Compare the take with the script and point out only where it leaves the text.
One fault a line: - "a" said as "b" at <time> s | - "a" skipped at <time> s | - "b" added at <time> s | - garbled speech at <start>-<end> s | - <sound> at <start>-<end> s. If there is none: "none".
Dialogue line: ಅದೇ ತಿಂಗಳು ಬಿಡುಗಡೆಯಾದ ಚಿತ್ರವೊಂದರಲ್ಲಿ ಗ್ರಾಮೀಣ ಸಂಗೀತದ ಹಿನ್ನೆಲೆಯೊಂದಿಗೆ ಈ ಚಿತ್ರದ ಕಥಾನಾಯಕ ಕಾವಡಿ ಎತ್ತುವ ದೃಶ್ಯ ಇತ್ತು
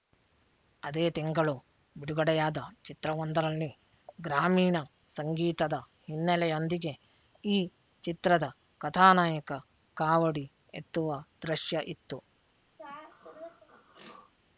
- throat clearing at 12.8-14.3 s